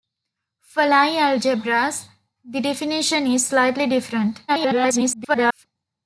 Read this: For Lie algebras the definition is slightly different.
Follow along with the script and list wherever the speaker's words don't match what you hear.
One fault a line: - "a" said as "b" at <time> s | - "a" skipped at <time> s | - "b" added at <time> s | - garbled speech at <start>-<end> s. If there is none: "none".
- garbled speech at 4.5-5.7 s